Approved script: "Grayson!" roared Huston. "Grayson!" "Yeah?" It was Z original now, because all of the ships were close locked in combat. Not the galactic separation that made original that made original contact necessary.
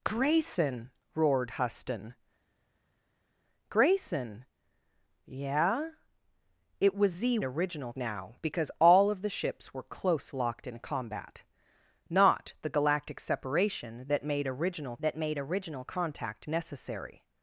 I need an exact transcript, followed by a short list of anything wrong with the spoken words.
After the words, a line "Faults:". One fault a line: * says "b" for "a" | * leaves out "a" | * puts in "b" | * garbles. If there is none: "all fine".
"Grayson!" roared Huston. "Grayson!" "Yeah?" It was Z original now, because all of the ships were close locked in combat. Not the galactic separation that made original that made original contact necessary.
Faults:
all fine